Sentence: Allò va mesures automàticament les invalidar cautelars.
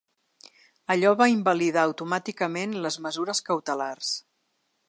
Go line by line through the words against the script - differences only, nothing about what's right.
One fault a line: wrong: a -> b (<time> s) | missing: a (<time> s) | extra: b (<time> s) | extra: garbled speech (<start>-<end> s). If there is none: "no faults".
wrong: mesures -> invalidar (1.3 s)
wrong: invalidar -> mesures (3.1 s)